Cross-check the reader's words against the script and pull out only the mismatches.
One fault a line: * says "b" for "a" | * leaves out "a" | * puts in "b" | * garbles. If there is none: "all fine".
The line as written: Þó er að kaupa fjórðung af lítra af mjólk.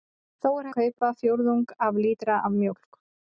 all fine